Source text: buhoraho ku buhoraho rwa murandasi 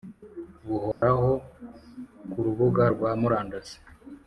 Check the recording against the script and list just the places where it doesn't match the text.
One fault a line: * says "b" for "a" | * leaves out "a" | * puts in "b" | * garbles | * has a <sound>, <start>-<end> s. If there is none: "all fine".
* has a dropout, 0.9-1.0 s
* says "rubuga" for "buhoraho"